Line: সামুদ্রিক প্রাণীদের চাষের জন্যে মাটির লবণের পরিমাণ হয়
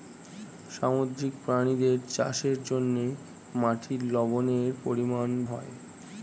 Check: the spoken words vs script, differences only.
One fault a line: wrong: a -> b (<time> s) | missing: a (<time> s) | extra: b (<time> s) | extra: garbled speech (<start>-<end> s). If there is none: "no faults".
no faults